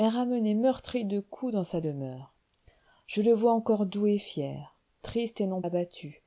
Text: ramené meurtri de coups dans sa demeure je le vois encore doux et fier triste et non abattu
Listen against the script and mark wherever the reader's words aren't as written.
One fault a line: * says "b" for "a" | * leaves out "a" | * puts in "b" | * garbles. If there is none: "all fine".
all fine